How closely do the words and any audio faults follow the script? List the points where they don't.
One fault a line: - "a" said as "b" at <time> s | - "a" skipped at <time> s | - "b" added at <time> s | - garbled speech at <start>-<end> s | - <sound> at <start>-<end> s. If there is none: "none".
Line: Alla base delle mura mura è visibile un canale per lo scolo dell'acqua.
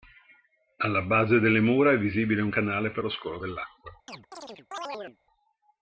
- "mura" skipped at 1.9 s
- chirp at 4.1-5.2 s